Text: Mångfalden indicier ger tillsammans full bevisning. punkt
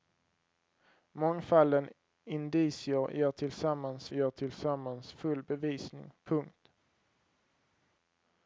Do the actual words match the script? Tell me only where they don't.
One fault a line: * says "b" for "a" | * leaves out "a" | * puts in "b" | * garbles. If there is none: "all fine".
* puts in "ger tillsammans"